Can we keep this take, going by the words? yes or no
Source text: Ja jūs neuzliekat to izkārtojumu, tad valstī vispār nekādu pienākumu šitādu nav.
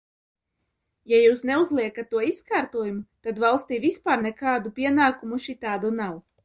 yes